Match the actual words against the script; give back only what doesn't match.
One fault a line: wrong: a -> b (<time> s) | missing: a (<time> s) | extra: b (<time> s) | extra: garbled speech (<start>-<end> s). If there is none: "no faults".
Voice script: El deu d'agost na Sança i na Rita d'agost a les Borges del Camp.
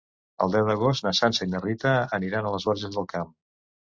wrong: d'agost -> aniran (2.2 s)